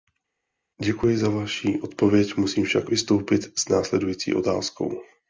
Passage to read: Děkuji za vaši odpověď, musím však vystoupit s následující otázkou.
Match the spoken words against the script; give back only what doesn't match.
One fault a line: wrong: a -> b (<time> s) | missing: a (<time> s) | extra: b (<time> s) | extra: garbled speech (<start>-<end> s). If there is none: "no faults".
no faults